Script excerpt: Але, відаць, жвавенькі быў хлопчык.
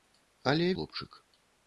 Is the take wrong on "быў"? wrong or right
wrong